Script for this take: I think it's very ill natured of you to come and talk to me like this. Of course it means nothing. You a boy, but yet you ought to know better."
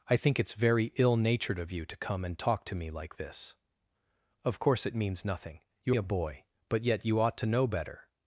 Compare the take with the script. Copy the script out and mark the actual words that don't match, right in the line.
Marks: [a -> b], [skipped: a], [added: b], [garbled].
I think it's very ill natured of you to come and talk to me like this. Of course it means nothing. You a boy, but yet you ought to know better."